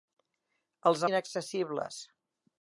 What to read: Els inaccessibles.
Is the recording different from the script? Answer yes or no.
no